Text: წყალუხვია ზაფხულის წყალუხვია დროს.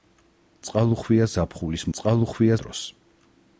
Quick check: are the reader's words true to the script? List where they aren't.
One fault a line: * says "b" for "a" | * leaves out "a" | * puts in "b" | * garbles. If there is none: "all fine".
all fine